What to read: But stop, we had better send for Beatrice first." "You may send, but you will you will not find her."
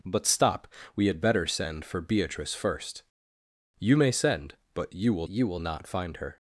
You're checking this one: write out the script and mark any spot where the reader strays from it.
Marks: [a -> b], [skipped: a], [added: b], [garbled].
But stop, we had better send for Beatrice first." "You may send, but you will you will not find her."